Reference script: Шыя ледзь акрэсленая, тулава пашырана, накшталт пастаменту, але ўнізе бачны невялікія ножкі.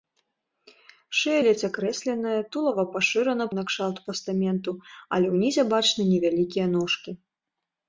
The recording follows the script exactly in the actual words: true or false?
true